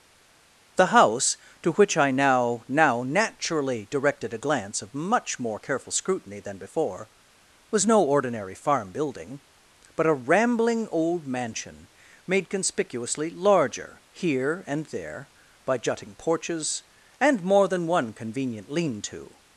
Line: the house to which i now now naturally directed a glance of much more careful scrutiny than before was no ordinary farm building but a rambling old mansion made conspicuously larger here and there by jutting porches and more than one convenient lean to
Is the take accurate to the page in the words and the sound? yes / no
yes